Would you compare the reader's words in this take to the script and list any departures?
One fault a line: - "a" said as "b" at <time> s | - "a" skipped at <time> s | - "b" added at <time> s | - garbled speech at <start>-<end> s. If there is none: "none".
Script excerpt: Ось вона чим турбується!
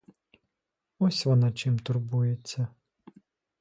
none